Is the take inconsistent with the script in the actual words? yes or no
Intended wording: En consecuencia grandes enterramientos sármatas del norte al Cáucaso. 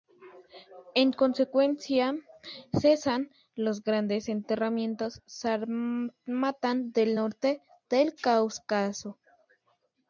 yes